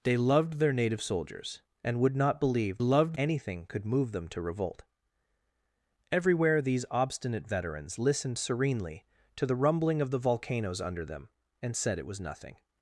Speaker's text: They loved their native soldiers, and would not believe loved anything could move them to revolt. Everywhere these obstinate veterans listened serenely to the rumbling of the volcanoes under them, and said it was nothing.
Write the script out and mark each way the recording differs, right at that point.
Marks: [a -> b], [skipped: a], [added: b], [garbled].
They loved their native soldiers, and would not believe loved anything could move them to revolt. Everywhere these obstinate veterans listened serenely to the rumbling of the volcanoes under them, and said it was nothing.